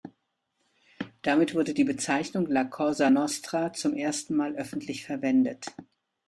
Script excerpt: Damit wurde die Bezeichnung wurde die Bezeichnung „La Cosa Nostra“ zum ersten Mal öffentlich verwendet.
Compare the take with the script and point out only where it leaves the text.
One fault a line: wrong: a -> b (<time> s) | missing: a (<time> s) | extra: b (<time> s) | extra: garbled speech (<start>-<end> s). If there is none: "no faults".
missing: wurde die Bezeichnung (2.5 s)